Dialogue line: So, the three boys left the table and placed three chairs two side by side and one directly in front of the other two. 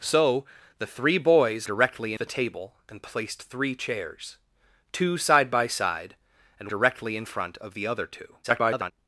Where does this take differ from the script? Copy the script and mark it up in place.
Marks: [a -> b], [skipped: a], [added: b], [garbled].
So, the three boys [left -> directly] the table and placed three chairs two side by side and [skipped: one] directly in front of the other two. [garbled]